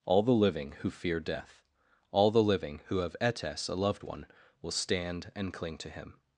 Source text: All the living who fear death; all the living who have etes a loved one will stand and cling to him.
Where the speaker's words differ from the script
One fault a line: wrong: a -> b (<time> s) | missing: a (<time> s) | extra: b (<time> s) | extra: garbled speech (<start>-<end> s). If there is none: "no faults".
no faults